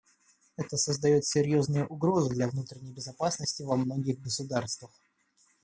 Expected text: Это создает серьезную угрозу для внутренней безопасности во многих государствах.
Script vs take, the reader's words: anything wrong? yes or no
no